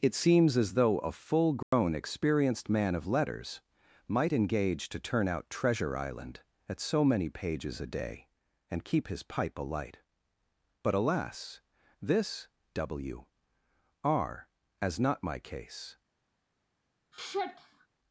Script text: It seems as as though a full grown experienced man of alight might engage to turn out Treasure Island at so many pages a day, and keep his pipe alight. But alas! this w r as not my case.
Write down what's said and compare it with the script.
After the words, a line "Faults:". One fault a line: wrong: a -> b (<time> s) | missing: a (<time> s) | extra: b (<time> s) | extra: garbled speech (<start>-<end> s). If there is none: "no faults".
It seems as though a full grown experienced man of letters might engage to turn out Treasure Island at so many pages a day, and keep his pipe alight. But alas! this w r as not my case.
Faults:
missing: as (0.7 s)
wrong: alight -> letters (3.0 s)